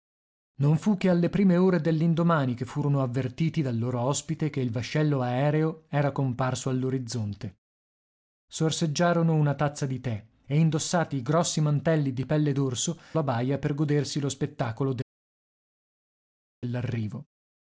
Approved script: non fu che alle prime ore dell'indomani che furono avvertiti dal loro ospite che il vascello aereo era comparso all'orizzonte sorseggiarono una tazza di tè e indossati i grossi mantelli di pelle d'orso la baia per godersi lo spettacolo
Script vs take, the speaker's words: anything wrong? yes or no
no